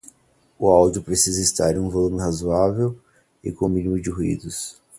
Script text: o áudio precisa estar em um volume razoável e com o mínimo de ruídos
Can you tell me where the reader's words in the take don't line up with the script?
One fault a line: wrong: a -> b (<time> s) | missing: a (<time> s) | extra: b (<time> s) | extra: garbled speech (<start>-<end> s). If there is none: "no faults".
no faults